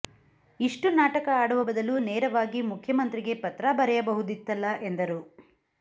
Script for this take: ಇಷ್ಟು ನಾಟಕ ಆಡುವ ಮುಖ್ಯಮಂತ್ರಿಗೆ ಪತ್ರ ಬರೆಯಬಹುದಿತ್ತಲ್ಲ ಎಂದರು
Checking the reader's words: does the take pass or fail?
fail